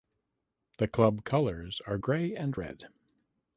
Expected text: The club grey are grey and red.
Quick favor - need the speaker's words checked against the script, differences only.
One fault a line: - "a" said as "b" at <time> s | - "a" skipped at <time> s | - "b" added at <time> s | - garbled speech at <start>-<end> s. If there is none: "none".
- "grey" said as "colours" at 1.2 s